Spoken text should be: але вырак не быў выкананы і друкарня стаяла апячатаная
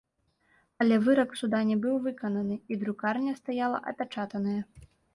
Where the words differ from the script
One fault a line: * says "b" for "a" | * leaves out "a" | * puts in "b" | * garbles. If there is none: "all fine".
* puts in "суда"